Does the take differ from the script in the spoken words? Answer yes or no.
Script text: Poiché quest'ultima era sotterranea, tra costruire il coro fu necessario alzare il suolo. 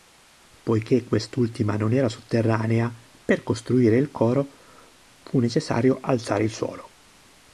yes